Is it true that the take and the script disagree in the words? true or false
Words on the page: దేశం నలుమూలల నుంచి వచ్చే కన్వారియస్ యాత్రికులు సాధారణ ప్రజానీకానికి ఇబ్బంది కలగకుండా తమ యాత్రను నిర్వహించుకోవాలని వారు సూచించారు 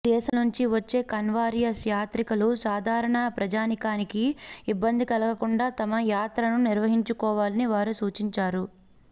true